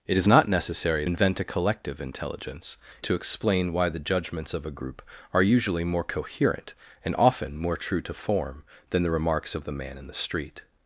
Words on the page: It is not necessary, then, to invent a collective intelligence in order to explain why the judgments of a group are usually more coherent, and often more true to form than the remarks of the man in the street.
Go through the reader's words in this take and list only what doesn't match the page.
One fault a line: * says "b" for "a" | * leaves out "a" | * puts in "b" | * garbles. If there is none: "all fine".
* leaves out "then to"
* leaves out "in order"